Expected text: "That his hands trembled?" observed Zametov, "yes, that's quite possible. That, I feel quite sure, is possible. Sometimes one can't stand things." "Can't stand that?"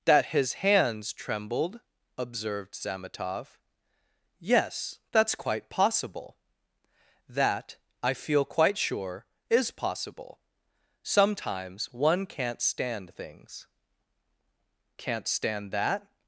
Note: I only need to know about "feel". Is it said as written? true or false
true